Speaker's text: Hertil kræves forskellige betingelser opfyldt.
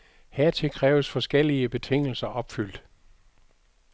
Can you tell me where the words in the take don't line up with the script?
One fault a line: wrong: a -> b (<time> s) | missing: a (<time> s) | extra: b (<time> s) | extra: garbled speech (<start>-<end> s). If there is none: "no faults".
no faults